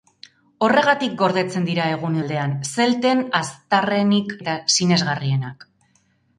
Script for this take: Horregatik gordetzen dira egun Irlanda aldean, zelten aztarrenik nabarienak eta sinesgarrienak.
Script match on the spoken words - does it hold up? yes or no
no